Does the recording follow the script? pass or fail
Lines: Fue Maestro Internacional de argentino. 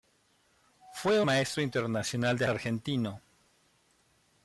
pass